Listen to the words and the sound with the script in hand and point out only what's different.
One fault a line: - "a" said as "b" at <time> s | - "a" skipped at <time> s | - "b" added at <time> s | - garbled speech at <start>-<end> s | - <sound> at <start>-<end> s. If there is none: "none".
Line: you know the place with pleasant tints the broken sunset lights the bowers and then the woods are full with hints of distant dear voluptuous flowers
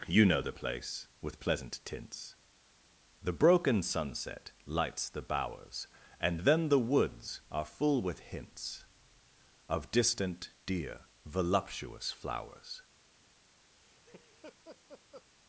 - laugh at 13.8-15.3 s